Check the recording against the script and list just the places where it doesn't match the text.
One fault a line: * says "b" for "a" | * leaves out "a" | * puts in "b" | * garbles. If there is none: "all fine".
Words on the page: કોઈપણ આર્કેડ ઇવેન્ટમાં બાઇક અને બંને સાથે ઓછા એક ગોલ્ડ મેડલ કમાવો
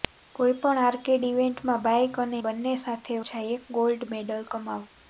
all fine